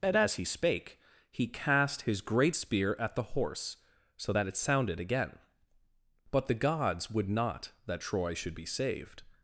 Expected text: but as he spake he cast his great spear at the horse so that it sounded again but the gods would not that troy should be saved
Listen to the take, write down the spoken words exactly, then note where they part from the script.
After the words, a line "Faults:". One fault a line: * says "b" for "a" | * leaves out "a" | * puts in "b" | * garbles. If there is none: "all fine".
and as he spake he cast his great spear at the horse so that it sounded again but the gods would not that troy should be saved
Faults:
* says "and" for "but"